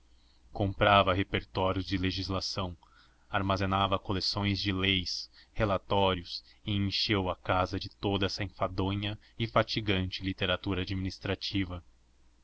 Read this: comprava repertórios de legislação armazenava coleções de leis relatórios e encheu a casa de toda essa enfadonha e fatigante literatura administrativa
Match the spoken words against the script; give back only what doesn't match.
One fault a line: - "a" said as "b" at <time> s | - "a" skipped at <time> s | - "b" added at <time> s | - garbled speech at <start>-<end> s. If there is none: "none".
none